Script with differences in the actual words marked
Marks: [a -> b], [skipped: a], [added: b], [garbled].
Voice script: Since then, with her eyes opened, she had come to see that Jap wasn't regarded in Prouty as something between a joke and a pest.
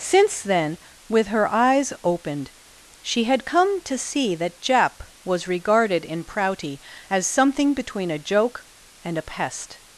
Since then, with her eyes opened, she had come to see that Jap [wasn't -> was] regarded in Prouty as something between a joke and a pest.